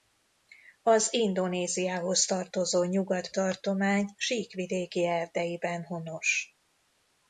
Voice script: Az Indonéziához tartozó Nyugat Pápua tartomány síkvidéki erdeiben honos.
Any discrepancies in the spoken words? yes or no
yes